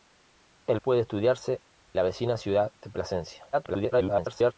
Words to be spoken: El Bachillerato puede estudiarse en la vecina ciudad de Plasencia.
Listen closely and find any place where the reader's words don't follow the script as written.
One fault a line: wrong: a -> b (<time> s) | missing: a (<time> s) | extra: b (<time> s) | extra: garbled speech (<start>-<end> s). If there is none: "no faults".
missing: Bachillerato (0.8 s)
missing: en (1.6 s)
extra: garbled speech (3.5-4.5 s)